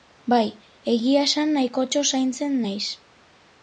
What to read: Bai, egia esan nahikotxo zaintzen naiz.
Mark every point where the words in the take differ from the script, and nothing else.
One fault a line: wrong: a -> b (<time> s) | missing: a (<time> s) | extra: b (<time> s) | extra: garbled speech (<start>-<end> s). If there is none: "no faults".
no faults